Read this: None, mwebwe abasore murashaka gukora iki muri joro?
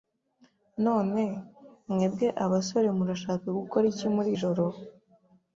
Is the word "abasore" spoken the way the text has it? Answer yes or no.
yes